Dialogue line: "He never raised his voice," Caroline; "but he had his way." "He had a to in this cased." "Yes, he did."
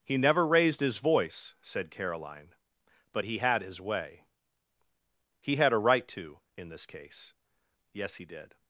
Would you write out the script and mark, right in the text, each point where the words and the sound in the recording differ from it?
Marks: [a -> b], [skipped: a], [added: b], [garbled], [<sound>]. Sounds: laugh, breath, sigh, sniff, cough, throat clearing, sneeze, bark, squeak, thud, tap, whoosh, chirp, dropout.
"He never raised his voice," [added: said] Caroline; "but he had his way." "He had a [added: right] to in this [cased." -> case] "Yes, he did."